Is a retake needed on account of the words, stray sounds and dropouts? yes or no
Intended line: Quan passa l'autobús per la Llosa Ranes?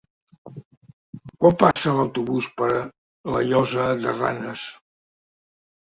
yes